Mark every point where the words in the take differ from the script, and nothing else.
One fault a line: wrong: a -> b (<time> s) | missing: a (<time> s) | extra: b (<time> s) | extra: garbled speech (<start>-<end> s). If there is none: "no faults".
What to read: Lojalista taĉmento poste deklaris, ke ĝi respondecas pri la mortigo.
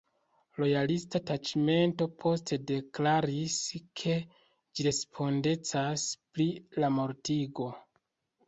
no faults